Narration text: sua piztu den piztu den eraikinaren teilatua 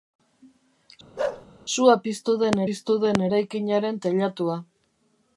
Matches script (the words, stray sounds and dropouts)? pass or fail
fail